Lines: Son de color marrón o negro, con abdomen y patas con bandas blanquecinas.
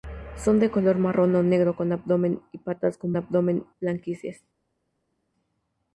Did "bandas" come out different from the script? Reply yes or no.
yes